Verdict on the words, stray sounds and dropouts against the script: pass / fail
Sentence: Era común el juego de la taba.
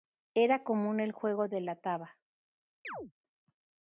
fail